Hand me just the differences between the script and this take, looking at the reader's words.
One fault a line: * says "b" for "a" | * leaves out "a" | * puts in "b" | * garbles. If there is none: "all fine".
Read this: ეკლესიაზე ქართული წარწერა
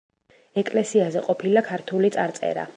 * puts in "ყოფილა"